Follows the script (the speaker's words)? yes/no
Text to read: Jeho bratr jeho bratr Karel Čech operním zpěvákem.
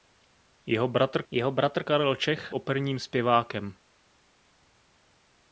yes